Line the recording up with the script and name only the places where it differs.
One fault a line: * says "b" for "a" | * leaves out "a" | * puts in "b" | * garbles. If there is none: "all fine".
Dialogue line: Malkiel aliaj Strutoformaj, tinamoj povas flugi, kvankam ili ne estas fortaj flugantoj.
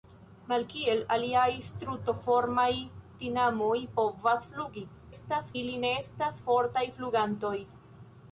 * says "estas" for "kvankam"